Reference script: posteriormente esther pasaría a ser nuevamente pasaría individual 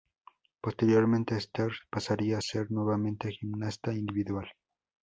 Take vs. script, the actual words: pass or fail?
fail